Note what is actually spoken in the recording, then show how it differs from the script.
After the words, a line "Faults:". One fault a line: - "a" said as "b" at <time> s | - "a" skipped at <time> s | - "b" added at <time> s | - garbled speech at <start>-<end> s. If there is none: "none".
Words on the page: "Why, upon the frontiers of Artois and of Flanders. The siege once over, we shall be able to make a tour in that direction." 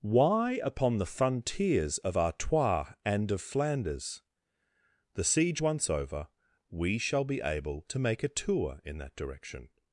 "Why, upon the frontiers of Artois and of Flanders. The siege once over, we shall be able to make a tour in that direction."
Faults:
none